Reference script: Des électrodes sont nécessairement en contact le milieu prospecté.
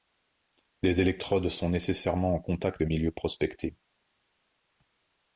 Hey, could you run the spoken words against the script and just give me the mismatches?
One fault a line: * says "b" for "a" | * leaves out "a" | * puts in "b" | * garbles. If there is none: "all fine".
all fine